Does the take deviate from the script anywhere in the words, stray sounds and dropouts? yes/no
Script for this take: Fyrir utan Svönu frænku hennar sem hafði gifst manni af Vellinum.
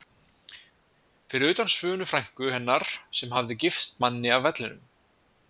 no